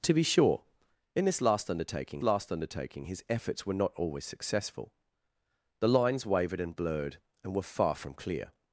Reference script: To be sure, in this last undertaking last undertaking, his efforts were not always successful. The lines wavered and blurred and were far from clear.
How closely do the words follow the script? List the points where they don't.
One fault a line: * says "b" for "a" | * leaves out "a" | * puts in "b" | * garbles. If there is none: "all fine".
all fine